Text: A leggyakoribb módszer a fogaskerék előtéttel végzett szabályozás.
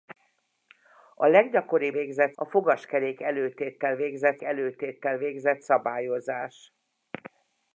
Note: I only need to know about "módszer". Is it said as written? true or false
false